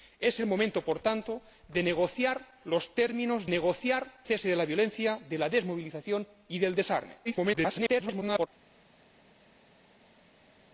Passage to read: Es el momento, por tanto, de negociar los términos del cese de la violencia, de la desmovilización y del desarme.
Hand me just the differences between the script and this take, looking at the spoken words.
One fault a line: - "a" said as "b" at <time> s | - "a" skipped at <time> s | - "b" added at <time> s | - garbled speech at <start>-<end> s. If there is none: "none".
- "del" said as "negociar" at 3.5 s
- garbled speech at 7.2-8.5 s